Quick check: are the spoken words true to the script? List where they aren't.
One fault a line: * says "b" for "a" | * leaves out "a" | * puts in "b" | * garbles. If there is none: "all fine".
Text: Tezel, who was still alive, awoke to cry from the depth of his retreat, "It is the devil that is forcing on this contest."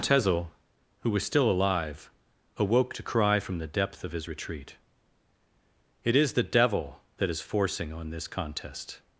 all fine